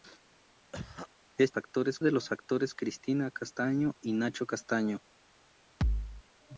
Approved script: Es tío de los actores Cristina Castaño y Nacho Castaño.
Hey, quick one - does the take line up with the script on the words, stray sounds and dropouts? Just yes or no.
no